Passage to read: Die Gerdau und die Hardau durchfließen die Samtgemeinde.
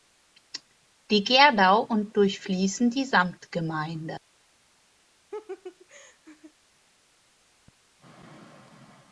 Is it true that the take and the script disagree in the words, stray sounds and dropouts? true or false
true